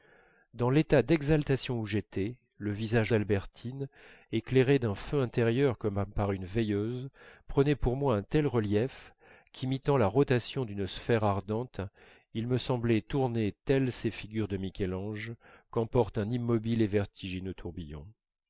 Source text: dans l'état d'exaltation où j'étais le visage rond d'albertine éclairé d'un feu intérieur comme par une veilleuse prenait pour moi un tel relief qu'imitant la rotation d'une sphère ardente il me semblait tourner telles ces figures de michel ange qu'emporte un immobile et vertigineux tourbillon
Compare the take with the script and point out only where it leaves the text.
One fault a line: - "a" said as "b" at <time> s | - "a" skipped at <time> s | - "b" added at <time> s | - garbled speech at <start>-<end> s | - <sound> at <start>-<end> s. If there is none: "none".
- "rond" skipped at 3.1 s